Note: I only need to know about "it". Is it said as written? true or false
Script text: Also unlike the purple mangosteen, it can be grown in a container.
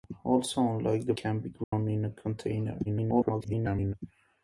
false